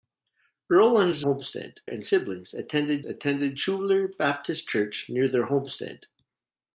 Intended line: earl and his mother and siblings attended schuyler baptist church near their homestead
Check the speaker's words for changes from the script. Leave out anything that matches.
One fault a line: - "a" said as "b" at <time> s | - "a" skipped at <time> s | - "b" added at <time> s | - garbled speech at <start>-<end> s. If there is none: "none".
- "mother" said as "homestead" at 1.2 s
- "attended" added at 3.0 s